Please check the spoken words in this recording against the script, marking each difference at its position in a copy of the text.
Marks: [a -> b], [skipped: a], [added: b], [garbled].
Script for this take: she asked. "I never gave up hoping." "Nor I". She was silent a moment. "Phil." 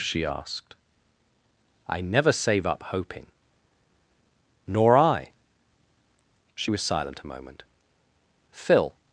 she asked. "I never [gave -> save] up hoping." "Nor I". She was silent a moment. "Phil."